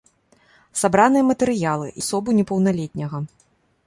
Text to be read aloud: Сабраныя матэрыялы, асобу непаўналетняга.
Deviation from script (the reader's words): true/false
false